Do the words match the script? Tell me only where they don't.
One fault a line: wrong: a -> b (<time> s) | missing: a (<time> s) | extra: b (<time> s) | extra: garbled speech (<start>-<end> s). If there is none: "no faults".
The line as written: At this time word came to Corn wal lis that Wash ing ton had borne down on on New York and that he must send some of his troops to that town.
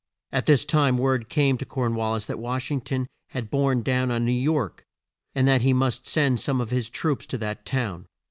missing: on (4.2 s)